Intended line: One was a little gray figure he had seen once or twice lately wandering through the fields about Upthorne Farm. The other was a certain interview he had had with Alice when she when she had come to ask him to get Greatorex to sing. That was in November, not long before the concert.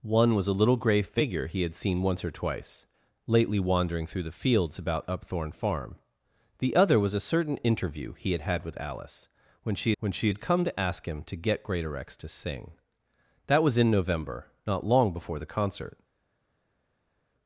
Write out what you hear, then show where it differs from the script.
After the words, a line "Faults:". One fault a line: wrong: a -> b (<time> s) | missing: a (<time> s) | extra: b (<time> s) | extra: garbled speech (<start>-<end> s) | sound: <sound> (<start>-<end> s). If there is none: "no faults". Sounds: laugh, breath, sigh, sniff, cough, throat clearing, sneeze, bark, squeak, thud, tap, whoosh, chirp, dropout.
One was a little gray figure he had seen once or twice lately wandering through the fields about Upthorne Farm. The other was a certain interview he had had with Alice when she when she had come to ask him to get Greatorex to sing. That was in November, not long before the concert.
Faults:
no faults